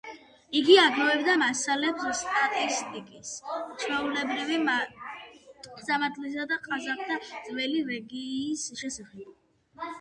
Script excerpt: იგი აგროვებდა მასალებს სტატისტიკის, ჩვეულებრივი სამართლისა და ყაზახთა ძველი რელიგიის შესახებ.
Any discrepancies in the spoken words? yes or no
no